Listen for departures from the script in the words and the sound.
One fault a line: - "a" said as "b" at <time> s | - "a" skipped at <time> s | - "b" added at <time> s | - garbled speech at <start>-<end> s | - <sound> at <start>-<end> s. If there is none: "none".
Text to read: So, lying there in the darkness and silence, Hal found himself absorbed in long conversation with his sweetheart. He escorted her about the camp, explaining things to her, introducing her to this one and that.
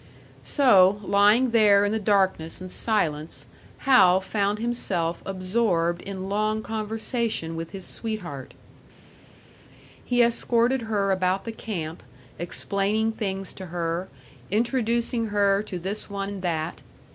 none